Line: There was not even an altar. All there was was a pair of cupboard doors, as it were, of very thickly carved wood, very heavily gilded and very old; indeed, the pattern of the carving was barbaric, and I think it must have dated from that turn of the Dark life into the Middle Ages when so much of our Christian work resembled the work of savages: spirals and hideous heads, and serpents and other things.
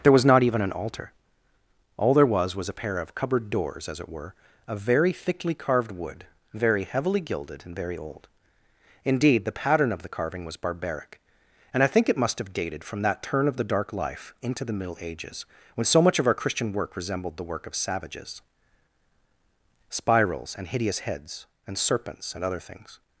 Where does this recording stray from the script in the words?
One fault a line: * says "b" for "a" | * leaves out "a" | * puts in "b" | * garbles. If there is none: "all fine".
all fine